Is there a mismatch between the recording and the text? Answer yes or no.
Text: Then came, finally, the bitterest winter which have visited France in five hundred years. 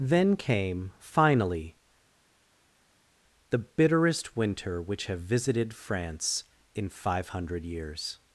no